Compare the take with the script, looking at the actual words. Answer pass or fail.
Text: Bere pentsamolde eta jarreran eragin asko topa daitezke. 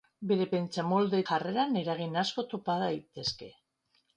fail